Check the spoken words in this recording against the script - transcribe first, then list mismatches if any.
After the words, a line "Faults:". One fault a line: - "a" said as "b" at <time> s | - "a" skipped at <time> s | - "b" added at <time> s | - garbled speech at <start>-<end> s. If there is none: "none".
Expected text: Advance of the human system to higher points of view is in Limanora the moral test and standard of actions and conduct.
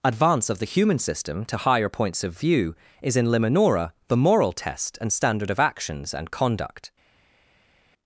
Advance of the human system to higher points of view is in Limanora the moral test and standard of actions and conduct.
Faults:
none